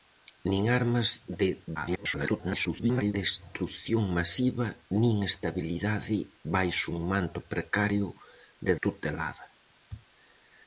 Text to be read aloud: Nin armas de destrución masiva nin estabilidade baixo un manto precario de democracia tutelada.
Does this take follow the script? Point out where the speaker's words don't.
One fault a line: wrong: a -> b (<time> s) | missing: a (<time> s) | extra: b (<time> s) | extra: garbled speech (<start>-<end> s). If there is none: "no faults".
extra: garbled speech (1.7-3.1 s)
missing: democracia (8.7 s)